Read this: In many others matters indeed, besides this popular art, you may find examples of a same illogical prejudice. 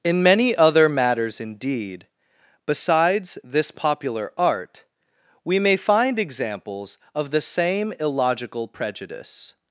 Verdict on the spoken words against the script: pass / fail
fail